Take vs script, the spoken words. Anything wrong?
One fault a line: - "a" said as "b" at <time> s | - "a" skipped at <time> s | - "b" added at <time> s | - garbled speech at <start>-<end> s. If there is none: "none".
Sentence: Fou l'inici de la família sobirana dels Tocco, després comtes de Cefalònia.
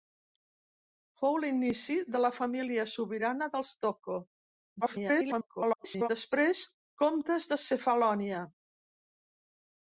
- garbled speech at 4.8-6.1 s